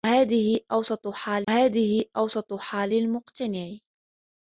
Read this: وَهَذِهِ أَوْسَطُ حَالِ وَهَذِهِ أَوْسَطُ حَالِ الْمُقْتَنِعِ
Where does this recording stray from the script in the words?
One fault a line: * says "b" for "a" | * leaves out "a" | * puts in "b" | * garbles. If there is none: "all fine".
all fine